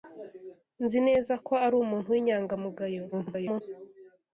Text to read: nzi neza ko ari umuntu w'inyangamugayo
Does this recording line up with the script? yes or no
no